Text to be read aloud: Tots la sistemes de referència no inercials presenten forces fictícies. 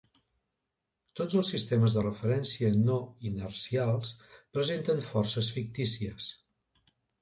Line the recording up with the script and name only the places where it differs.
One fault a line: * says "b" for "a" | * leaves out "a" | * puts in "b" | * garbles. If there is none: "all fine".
* says "els" for "la"